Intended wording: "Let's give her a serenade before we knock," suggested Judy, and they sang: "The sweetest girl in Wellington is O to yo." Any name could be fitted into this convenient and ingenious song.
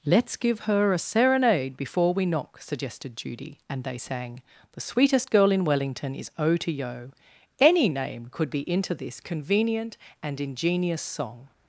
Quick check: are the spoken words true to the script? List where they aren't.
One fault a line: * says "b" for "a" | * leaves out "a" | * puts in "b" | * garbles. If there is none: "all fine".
* leaves out "fitted"